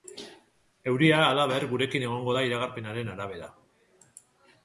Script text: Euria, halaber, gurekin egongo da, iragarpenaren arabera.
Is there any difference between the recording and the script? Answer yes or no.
no